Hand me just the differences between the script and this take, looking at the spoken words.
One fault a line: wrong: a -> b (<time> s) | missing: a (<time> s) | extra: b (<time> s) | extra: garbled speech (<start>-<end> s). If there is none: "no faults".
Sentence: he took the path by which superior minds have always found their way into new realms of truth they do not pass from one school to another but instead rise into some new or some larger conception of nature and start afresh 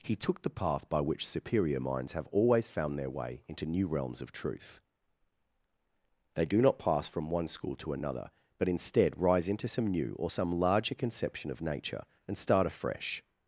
no faults